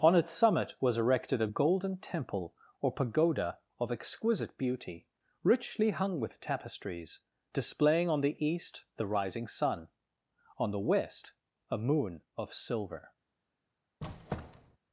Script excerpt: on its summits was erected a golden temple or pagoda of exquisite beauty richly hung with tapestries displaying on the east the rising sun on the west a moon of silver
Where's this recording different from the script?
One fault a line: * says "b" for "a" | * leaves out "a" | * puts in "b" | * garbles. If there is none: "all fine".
* says "summit" for "summits"